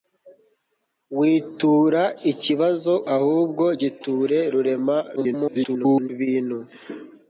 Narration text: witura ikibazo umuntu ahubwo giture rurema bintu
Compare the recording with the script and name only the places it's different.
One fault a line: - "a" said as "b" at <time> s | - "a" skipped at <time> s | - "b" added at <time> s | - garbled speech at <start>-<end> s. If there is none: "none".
- "umuntu" skipped at 2.9 s
- garbled speech at 5.2-6.1 s